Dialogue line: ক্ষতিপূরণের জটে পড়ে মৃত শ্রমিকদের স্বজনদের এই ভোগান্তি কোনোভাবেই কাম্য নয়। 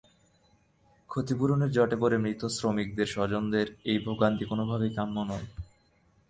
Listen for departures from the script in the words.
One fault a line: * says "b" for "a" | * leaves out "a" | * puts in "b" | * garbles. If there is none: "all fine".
all fine